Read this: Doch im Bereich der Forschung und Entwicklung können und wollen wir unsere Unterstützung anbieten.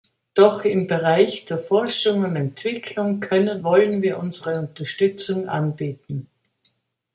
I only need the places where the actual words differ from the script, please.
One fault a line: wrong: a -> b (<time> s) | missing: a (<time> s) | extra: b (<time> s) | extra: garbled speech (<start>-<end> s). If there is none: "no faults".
missing: und (3.6 s)